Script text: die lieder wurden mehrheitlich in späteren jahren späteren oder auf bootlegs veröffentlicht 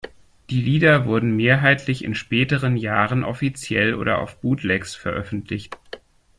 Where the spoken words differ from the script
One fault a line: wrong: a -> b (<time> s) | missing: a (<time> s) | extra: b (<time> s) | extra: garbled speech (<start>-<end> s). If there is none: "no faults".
wrong: späteren -> offiziell (3.2 s)